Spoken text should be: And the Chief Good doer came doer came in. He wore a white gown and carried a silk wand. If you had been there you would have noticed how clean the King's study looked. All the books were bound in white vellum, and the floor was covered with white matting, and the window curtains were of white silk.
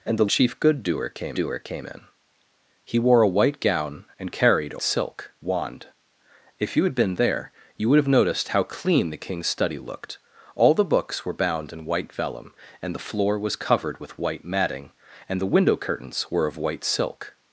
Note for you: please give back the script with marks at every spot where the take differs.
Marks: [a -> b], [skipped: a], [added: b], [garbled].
And the Chief Good doer came doer came in. He wore a white gown and carried a silk wand. If you had been there you would have noticed how clean the King's study looked. All the books were bound in white vellum, and the floor was covered with white matting, and the window curtains were of white silk.